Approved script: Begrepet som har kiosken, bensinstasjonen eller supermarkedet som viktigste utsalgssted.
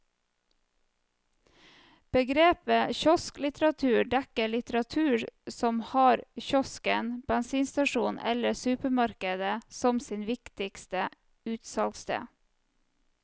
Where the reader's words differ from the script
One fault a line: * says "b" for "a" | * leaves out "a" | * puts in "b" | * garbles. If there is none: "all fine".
* puts in "kiosklitteratur dekker litteratur"
* puts in "sitt"